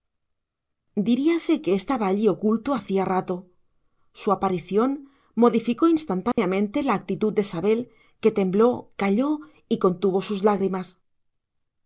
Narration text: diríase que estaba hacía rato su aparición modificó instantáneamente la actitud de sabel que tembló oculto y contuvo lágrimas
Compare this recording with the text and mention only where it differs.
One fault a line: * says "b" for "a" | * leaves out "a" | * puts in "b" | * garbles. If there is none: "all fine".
* puts in "allí oculto"
* says "calló" for "oculto"
* puts in "sus"